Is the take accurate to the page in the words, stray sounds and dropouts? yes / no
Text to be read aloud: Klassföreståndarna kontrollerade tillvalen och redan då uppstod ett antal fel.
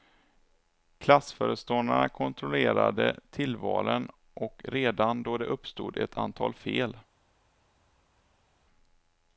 yes